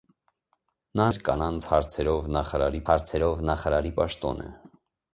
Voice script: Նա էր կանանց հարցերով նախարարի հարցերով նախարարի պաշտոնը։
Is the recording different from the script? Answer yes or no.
no